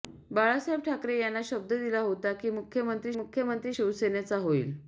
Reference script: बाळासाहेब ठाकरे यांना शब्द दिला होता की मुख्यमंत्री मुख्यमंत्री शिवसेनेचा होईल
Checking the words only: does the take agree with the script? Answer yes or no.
yes